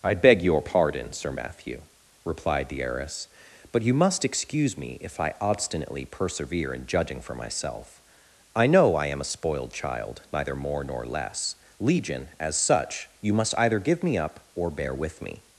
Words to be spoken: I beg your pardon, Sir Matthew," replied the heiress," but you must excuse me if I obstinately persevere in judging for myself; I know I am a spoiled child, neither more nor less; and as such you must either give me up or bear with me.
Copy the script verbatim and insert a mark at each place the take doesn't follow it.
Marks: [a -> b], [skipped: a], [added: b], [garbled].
I beg your pardon, Sir Matthew," replied the heiress," but you must excuse me if I obstinately persevere in judging for myself; I know I am a spoiled child, neither more nor less; [and -> legion] as such you must either give me up or bear with me.